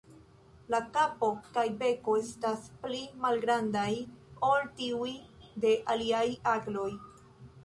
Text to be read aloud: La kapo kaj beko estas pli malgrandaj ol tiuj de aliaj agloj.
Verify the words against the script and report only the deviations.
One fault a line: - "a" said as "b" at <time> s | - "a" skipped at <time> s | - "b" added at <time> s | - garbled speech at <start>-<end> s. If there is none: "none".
none